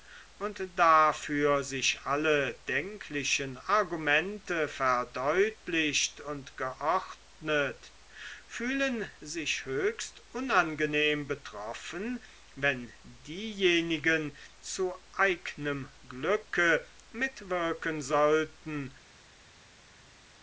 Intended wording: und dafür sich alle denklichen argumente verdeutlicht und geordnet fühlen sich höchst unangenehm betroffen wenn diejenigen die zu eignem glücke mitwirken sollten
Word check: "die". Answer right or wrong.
wrong